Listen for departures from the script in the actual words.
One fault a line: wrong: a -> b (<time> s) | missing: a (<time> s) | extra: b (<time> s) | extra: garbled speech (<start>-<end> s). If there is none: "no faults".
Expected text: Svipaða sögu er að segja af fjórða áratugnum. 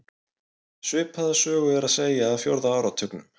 no faults